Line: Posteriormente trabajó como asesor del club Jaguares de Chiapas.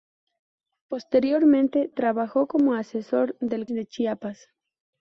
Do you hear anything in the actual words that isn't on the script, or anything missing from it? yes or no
yes